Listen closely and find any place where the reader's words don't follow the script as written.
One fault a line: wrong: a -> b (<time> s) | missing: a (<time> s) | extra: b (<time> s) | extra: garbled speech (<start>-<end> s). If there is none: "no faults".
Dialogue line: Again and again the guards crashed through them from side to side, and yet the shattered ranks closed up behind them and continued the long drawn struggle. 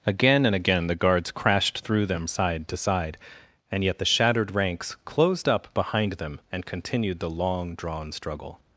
missing: from (2.2 s)